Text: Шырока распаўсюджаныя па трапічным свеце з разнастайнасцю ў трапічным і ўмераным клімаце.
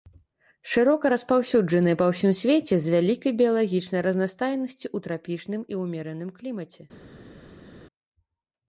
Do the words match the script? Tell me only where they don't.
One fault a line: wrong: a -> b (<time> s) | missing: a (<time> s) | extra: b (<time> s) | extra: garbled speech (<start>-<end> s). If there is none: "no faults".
wrong: трапічным -> ўсім (2.1 s)
extra: вялікай біялагічнай (3.0 s)